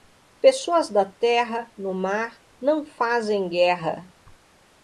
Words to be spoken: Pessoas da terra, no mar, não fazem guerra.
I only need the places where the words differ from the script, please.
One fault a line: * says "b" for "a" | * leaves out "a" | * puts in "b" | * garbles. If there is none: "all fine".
all fine